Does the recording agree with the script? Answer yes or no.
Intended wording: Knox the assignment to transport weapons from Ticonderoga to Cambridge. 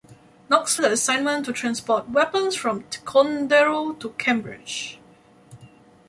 yes